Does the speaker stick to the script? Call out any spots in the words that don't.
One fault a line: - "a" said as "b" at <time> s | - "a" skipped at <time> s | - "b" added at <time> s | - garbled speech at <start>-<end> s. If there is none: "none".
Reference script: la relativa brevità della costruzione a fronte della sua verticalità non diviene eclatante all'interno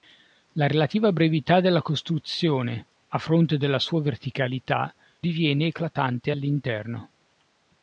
- "non" skipped at 4.9 s